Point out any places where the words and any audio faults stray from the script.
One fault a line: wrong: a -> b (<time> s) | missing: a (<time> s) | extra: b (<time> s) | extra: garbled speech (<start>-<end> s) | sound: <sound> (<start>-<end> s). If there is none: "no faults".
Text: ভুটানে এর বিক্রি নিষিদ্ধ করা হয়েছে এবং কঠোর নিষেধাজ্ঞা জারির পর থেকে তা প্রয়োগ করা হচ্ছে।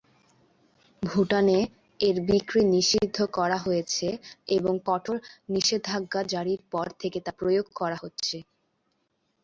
no faults